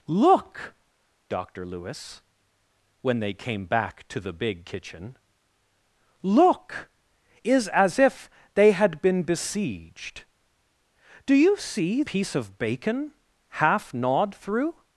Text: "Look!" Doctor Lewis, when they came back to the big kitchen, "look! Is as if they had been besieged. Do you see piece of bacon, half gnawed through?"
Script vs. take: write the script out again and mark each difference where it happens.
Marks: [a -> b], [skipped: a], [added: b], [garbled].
"Look!" Doctor Lewis, when they came back to the big kitchen, "look! Is as if they had been besieged. Do you see piece of bacon, half gnawed through?"